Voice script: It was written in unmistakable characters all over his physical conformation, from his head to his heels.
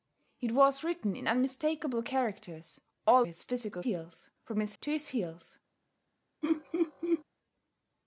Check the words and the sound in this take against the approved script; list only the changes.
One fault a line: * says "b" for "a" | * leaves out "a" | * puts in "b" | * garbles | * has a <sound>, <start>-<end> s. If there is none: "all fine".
* leaves out "over"
* says "heels" for "conformation"
* leaves out "head"
* has a laugh, 6.4-7.2 s